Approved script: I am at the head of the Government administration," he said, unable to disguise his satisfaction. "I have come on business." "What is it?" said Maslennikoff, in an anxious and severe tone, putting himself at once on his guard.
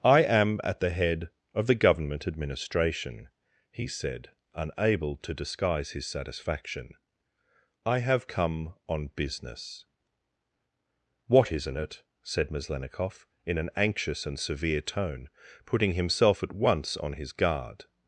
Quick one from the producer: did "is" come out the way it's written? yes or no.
no